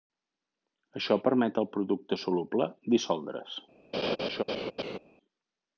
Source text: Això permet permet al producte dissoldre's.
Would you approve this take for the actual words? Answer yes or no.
no